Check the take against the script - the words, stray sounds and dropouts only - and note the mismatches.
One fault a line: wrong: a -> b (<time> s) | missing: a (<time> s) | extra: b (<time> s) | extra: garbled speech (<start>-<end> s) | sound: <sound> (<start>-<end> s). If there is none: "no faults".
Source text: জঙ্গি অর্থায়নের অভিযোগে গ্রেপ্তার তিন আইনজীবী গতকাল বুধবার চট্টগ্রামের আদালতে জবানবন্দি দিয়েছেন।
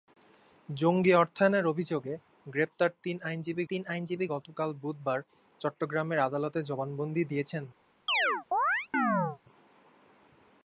extra: তিন আইনজীবী (3.7 s)
sound: chirp (8.1-9.4 s)